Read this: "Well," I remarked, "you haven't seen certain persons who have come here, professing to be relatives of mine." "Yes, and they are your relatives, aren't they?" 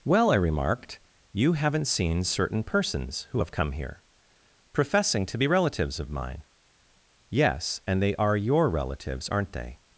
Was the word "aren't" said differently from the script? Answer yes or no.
no